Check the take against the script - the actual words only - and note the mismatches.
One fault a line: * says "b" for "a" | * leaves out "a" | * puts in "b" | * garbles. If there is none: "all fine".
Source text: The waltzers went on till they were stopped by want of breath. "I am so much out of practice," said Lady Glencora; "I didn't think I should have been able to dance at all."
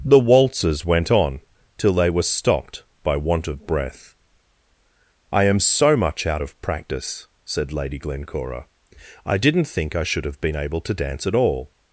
all fine